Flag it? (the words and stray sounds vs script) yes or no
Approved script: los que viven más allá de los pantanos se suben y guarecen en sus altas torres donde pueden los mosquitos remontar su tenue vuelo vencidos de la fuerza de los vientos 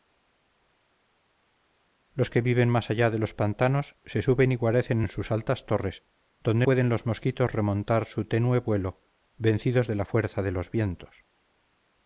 no